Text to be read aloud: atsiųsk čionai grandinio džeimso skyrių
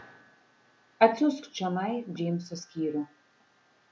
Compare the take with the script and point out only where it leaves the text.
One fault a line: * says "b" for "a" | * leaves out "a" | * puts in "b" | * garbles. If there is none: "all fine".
* leaves out "grandinio"